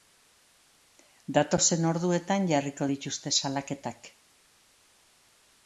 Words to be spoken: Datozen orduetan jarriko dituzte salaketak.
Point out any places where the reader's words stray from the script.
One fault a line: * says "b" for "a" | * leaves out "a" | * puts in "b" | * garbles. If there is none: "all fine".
all fine